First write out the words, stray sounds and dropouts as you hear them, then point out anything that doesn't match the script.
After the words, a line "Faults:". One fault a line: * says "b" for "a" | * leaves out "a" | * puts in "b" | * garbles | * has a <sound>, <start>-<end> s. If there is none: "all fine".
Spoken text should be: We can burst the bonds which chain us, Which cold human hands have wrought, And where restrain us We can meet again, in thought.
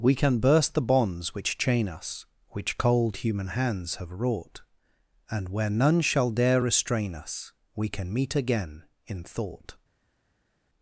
We can burst the bonds which chain us, Which cold human hands have wrought, And where none shall dare restrain us We can meet again, in thought.
Faults:
* puts in "none shall dare"